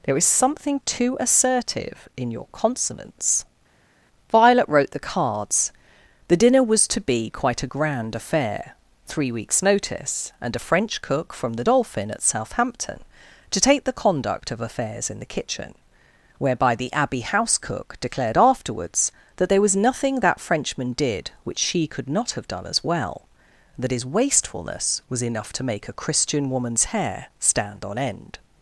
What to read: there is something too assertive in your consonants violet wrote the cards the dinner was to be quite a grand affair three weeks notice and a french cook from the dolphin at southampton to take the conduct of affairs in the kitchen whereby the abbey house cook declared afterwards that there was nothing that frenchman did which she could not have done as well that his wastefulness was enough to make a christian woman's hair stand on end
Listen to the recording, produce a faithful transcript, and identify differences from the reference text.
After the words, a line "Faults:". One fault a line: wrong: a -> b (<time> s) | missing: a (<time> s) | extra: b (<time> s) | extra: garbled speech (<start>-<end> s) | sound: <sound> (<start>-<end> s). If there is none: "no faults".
there is something too assertive in your consonants violet wrote the cards the dinner was to be quite a grand affair three weeks notice and a french cook from the dolphin at southampton to take the conduct of affairs in the kitchen whereby the abbey house cook declared afterwards that there was nothing that frenchman did which she could not have done as well that his wastefulness was enough to make a christian woman's hair stand on end
Faults:
no faults